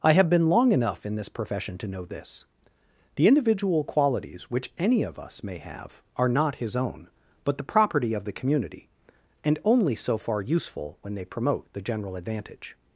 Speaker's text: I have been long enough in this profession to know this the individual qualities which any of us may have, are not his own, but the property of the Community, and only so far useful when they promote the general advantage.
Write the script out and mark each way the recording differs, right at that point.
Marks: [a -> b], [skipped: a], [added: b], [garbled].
I have been long enough in this profession to know this the individual qualities which any of us may have, are not his own, but the property of the Community, and only so far useful when they promote the general advantage.